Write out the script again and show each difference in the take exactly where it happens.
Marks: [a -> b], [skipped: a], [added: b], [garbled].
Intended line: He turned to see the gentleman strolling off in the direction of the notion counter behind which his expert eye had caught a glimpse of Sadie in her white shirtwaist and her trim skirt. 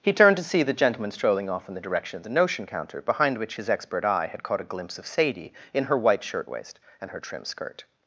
He turned to see the gentleman strolling off in the direction of the notion counter behind which his expert eye had caught a glimpse of Sadie in her white shirtwaist and her trim skirt.